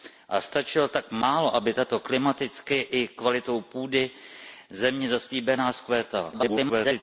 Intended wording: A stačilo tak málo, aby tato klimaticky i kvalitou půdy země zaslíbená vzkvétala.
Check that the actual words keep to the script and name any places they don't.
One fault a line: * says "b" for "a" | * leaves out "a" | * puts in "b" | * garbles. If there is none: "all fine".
* garbles